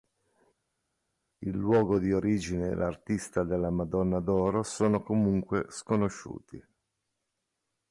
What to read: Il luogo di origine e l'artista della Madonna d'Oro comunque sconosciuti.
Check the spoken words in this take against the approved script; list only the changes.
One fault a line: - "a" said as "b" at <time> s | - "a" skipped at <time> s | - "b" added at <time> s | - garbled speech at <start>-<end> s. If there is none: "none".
- "sono" added at 4.6 s